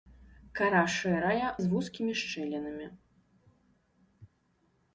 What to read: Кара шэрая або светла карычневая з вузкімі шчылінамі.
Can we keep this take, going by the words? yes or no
no